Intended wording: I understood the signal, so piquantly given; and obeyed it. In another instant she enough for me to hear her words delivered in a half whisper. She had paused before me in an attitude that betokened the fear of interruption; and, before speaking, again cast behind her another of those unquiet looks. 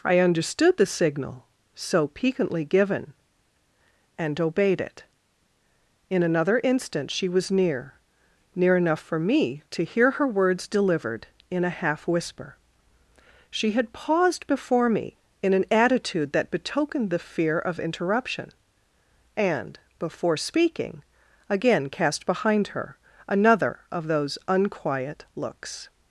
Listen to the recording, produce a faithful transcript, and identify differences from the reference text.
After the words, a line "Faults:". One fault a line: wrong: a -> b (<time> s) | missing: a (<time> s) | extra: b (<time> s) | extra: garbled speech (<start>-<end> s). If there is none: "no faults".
I understood the signal, so piquantly given; and obeyed it. In another instant she was near near enough for me to hear her words delivered in a half whisper. She had paused before me in an attitude that betokened the fear of interruption; and, before speaking, again cast behind her another of those unquiet looks.
Faults:
extra: was near near (7.3 s)